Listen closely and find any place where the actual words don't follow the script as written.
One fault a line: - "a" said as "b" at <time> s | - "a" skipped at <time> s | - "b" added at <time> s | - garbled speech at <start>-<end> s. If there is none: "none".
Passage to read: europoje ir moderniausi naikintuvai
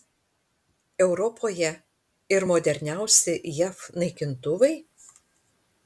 - "jav" added at 3.6 s